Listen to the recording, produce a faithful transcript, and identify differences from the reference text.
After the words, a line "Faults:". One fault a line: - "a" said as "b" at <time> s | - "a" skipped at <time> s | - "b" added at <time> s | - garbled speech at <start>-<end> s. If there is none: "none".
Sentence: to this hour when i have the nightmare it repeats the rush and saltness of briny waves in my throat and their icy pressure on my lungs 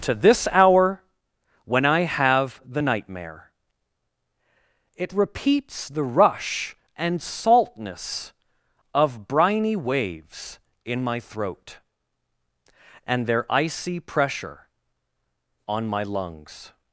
to this hour when i have the nightmare it repeats the rush and saltness of briny waves in my throat and their icy pressure on my lungs
Faults:
none